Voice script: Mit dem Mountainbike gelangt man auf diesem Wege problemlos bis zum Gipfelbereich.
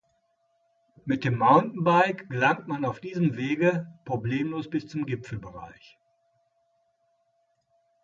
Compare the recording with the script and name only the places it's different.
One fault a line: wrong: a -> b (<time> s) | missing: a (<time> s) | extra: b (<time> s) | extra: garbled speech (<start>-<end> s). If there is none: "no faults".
no faults